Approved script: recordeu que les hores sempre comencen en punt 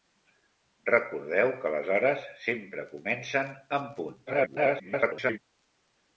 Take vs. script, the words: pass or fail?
fail